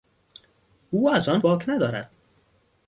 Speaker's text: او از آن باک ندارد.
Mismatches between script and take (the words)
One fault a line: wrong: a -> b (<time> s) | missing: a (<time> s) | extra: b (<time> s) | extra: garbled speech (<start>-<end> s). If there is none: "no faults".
no faults